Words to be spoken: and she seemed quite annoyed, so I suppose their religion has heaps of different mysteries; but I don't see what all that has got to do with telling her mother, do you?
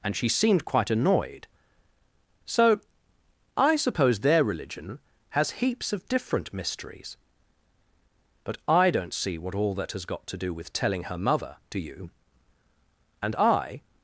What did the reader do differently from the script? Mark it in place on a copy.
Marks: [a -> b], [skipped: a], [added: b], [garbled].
and she seemed quite annoyed, so I suppose their religion has heaps of different mysteries; but I don't see what all that has got to do with telling her mother, do you? [added: And I]